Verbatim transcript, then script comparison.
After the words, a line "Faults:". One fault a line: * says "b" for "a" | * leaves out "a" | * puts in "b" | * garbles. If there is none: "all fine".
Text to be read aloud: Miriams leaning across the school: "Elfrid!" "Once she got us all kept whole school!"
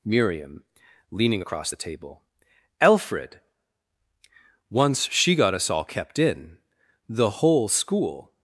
Miriam leaning across the table: "Elfrid!" "Once she got us all kept in. The whole school!"
Faults:
* says "Miriam" for "Miriams"
* says "table" for "school"
* puts in "in The"